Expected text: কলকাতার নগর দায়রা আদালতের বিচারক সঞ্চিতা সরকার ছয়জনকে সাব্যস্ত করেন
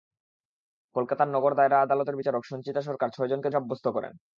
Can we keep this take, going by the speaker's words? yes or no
yes